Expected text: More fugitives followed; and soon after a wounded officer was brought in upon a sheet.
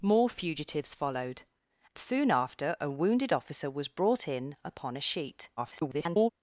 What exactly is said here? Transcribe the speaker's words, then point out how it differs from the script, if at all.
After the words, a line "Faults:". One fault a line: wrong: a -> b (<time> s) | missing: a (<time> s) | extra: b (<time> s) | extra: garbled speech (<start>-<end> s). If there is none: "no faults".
More fugitives followed; soon after a wounded officer was brought in upon a sheet. [garbled]
Faults:
missing: and (1.4 s)
extra: garbled speech (5.6-6.3 s)